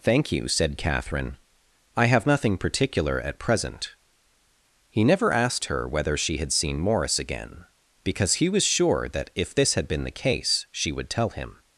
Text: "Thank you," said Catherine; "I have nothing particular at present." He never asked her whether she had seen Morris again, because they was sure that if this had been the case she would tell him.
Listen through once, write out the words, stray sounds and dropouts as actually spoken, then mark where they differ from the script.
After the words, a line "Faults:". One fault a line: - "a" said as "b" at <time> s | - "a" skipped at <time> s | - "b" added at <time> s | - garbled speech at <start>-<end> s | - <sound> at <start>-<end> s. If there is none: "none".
"Thank you," said Catherine; "I have nothing particular at present." He never asked her whether she had seen Morris again, because he was sure that if this had been the case she would tell him.
Faults:
- "they" said as "he" at 8.3 s